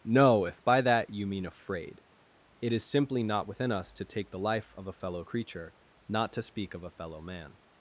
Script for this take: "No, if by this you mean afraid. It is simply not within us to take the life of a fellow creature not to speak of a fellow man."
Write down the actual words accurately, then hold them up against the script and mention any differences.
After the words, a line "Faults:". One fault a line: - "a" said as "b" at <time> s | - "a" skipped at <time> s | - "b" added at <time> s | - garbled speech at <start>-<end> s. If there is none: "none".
"No, if by that you mean afraid. It is simply not within us to take the life of a fellow creature not to speak of a fellow man."
Faults:
- "this" said as "that" at 0.8 s